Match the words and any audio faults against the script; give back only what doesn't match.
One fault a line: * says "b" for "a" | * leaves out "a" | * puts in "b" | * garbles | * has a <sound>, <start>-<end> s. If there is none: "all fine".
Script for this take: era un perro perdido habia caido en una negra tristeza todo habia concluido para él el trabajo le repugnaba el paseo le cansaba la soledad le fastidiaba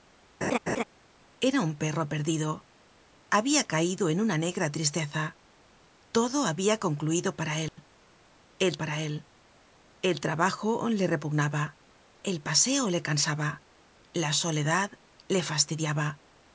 * has a laugh, 0.4-0.8 s
* has a dropout, 7.7-7.8 s
* puts in "para él el"